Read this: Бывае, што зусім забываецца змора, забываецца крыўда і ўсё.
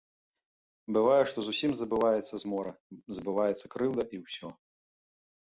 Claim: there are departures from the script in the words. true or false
false